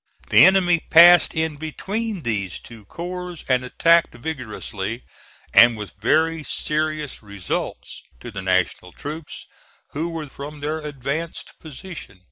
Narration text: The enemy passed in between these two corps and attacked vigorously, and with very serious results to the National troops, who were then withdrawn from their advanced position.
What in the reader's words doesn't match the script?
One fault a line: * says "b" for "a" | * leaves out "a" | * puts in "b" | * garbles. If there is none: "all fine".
* leaves out "then withdrawn"